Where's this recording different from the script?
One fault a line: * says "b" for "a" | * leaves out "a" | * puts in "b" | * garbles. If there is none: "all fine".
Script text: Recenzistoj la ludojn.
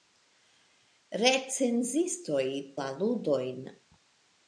all fine